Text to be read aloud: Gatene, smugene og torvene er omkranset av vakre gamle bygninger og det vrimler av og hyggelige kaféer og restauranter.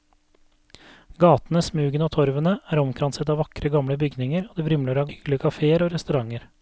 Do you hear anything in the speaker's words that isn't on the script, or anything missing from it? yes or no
no